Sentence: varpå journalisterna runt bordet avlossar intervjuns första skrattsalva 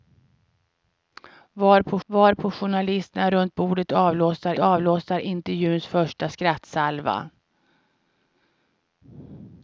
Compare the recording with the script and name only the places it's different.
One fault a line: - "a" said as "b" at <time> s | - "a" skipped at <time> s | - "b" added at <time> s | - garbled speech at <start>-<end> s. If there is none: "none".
- "varpå" added at 2.1 s
- "avlossar" added at 4.6 s